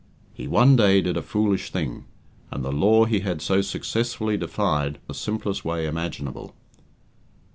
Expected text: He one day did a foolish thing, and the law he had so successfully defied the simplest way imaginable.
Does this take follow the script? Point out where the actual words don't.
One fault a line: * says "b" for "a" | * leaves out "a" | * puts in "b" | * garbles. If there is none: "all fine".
all fine